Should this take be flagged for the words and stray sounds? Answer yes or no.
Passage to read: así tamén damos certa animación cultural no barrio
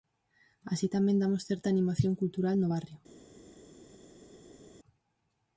no